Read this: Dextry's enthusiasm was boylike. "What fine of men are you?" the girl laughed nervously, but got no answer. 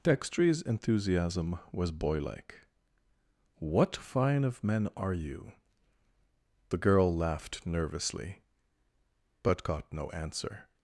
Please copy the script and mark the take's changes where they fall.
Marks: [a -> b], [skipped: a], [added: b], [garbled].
Dextry's enthusiasm was boylike. "What fine of men are you?" the girl laughed nervously, but got no answer.